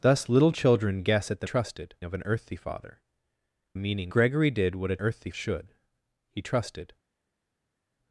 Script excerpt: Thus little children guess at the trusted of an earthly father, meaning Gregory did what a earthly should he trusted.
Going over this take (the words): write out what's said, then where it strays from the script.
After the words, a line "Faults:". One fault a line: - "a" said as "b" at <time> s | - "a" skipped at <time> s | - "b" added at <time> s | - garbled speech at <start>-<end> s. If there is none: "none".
Thus little children guess at the trusted of an earthly father, meaning Gregory did what a earthly should he trusted.
Faults:
none